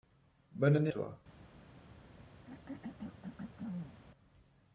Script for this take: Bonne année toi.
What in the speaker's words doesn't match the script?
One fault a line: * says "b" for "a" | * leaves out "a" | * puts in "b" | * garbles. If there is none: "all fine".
all fine